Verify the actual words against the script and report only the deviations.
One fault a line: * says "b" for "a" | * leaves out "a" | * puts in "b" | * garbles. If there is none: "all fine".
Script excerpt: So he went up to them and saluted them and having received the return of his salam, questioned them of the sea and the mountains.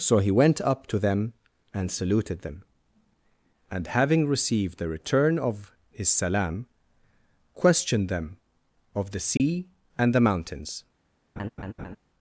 all fine